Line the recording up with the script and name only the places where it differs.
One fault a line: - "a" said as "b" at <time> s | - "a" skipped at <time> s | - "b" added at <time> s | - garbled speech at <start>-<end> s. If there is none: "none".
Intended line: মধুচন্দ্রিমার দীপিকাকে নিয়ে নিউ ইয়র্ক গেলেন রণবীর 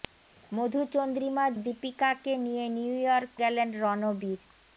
none